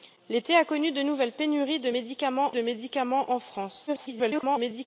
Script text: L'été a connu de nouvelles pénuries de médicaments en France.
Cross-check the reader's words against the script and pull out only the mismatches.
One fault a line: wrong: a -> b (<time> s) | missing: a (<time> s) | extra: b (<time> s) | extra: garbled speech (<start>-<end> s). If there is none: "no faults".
extra: de médicaments (2.5 s)
extra: garbled speech (3.9-4.9 s)